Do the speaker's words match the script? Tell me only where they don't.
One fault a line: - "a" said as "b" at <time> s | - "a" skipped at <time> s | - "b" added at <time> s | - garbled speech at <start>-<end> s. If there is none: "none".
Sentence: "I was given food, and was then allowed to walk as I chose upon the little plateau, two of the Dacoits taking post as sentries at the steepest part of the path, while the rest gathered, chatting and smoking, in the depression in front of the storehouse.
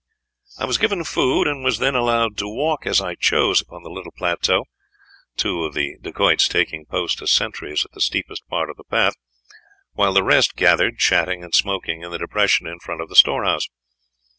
none